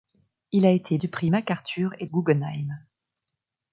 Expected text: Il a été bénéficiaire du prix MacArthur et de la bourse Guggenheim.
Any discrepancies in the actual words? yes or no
yes